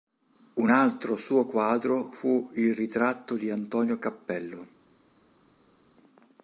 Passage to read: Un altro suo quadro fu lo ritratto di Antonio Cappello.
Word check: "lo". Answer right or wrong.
wrong